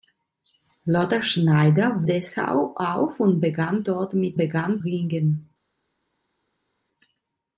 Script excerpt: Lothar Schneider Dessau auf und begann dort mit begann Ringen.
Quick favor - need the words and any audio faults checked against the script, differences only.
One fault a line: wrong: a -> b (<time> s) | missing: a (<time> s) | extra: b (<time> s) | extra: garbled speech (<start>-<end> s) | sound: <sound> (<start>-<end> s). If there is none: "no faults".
no faults